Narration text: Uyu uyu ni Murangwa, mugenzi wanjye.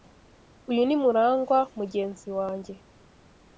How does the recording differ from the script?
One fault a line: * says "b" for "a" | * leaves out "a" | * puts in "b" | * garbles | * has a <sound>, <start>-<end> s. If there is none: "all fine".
* leaves out "uyu"